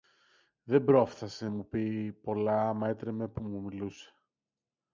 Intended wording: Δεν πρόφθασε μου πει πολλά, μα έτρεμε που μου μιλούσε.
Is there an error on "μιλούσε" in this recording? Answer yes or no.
no